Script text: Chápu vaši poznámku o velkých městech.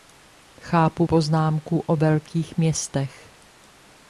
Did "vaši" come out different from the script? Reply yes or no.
yes